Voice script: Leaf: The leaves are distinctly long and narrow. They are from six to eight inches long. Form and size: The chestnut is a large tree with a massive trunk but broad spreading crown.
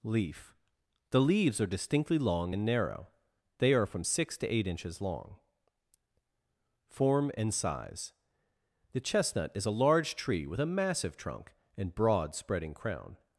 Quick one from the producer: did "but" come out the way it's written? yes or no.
no